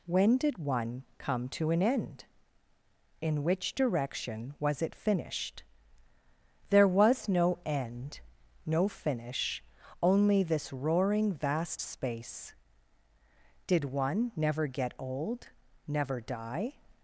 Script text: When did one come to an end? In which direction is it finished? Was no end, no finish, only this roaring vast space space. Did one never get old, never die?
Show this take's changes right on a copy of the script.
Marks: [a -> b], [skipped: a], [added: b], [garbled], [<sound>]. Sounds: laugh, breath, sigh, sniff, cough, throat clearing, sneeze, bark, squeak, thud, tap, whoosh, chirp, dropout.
When did one come to an end? In which direction [is -> was] it finished? [added: There] Was no end, no finish, only this roaring vast space [skipped: space.] Did one never get old, never die?